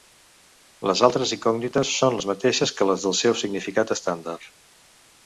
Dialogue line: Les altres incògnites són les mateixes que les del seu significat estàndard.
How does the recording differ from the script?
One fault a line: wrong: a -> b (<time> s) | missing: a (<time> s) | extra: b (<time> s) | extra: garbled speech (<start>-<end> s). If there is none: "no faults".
no faults